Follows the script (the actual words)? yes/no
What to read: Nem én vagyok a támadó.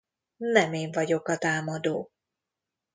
yes